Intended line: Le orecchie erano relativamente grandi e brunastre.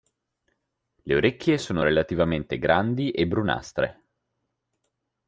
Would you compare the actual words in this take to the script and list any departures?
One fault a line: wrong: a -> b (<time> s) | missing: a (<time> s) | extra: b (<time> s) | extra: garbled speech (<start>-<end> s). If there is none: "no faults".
wrong: erano -> sono (1.6 s)